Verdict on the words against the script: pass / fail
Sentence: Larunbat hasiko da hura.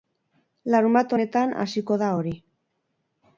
fail